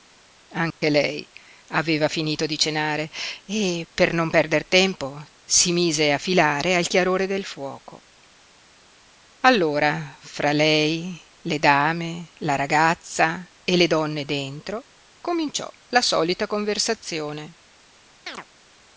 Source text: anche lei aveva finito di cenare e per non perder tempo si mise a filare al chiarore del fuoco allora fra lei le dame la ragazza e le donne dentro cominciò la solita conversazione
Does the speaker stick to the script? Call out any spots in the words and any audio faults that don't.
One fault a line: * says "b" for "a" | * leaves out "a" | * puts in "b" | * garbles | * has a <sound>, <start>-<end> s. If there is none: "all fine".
* has a dropout, 0.7-0.8 s
* has a chirp, 18.3-18.5 s